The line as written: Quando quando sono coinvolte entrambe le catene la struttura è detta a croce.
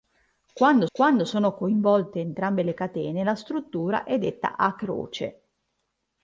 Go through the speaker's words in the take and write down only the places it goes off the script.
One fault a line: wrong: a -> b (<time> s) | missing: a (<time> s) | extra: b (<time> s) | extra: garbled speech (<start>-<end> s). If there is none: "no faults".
no faults